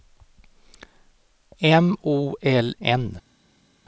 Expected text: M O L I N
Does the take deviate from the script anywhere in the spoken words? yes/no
yes